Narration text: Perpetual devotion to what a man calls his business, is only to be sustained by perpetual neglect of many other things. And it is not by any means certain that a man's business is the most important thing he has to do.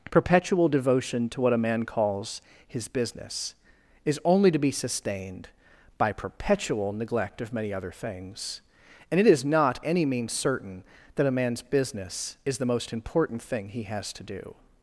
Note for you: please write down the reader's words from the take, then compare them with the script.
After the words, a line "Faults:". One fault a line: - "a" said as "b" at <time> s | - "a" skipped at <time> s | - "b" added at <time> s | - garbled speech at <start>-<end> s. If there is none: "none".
Perpetual devotion to what a man calls his business, is only to be sustained by perpetual neglect of many other things. And it is not any means certain that a man's business is the most important thing he has to do.
Faults:
- "by" skipped at 9.8 s